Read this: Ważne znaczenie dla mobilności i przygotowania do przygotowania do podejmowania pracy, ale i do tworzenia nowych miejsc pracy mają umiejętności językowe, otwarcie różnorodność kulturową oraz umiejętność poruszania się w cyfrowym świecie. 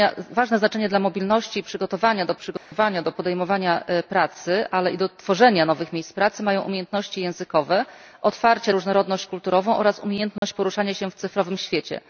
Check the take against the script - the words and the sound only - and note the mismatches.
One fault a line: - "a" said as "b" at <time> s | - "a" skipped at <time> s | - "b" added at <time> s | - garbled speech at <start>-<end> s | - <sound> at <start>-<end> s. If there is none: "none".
- dropout at 2.6-2.7 s
- dropout at 10.4-10.4 s